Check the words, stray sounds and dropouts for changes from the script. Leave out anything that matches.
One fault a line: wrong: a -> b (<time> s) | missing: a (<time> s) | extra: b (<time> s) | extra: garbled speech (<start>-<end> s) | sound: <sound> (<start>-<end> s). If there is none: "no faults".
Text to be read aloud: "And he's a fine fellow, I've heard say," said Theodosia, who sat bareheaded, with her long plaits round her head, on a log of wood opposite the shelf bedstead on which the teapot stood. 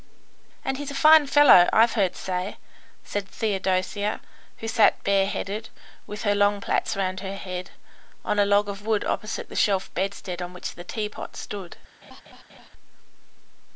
sound: laugh (12.0-12.7 s)